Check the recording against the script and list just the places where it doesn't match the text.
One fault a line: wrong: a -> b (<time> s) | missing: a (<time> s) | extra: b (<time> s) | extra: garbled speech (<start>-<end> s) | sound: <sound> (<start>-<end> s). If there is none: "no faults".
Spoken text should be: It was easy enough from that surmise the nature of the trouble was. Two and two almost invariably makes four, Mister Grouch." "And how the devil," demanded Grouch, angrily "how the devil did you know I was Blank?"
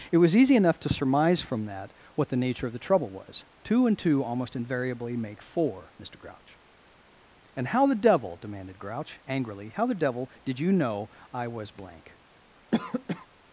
extra: to surmise (0.8 s)
wrong: surmise -> what (2.1 s)
wrong: makes -> make (5.2 s)
sound: cough (12.7-13.3 s)